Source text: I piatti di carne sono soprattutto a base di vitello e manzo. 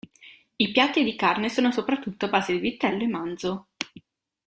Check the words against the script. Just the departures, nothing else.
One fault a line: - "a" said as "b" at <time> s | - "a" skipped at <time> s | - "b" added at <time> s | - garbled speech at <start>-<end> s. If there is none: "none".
none